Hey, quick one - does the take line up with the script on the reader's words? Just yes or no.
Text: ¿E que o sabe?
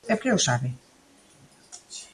yes